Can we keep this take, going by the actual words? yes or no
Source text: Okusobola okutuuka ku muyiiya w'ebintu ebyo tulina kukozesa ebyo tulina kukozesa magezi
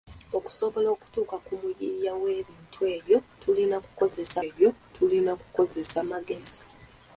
yes